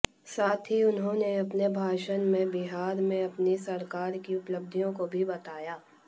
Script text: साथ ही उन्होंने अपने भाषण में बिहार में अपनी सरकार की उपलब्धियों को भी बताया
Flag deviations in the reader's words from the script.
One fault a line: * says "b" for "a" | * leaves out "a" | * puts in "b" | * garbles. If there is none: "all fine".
all fine